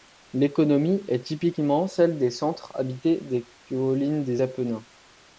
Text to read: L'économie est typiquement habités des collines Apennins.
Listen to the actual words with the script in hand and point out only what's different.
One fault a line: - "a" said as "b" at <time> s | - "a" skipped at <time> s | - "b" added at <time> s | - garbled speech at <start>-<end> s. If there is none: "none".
- "celle des centres" added at 1.9 s
- "des" added at 4.2 s